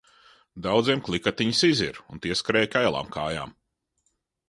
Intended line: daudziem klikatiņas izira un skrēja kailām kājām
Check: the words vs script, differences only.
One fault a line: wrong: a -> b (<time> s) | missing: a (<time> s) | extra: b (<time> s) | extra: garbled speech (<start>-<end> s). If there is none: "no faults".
extra: tie (2.2 s)